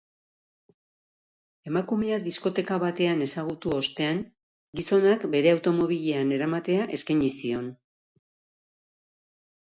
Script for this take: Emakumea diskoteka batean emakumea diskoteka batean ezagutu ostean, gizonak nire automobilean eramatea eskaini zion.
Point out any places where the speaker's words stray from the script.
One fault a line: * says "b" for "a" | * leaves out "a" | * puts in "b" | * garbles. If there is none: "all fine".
* leaves out "emakumea diskoteka batean"
* says "bere" for "nire"